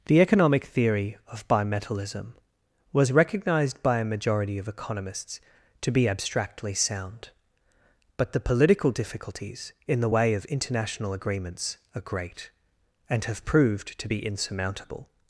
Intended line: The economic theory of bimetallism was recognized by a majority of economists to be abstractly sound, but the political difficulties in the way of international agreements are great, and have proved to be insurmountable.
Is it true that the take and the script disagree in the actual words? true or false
false